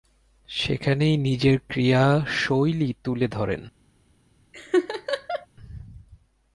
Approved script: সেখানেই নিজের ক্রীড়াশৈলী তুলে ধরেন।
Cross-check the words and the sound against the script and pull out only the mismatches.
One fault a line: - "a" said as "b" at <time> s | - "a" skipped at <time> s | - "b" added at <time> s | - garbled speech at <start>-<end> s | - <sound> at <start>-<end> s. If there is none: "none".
- laugh at 4.5-5.5 s